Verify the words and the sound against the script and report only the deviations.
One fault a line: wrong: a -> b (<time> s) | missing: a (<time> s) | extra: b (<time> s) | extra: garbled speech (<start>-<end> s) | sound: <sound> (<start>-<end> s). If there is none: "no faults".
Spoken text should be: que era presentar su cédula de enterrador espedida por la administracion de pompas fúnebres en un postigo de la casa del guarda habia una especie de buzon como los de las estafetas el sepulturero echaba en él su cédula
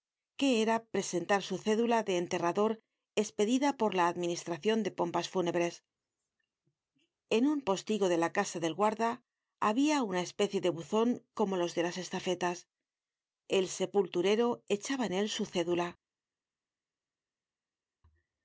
no faults